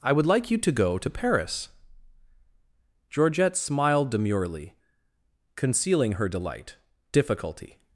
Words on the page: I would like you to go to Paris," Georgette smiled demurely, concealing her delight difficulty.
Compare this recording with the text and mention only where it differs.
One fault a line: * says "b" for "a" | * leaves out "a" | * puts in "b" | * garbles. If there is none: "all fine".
all fine